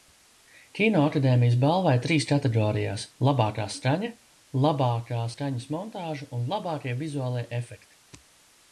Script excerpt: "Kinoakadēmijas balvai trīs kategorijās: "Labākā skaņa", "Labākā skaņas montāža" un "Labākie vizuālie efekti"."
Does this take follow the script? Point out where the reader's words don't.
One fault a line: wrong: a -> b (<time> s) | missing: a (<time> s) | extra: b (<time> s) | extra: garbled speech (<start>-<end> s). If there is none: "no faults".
no faults